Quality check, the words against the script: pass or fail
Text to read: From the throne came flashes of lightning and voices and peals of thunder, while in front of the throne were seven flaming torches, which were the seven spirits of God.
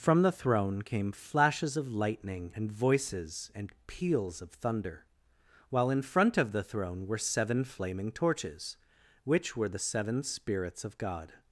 pass